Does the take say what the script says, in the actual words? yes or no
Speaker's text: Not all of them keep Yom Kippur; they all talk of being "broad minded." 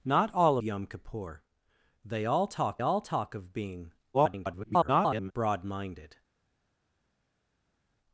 no